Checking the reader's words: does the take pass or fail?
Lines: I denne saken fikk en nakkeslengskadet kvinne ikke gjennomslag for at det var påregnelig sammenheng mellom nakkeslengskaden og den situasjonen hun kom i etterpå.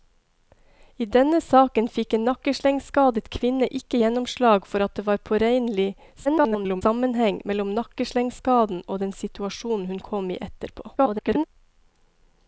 fail